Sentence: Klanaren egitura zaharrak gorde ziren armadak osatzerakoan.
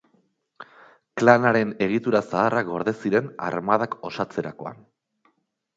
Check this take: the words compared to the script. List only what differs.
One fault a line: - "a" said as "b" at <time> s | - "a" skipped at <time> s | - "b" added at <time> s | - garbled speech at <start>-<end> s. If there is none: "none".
none